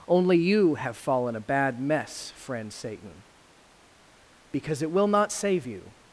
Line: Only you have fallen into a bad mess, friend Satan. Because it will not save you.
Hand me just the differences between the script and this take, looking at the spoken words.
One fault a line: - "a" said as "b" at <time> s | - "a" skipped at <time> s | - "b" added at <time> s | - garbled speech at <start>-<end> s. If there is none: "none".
- "into" skipped at 1.4 s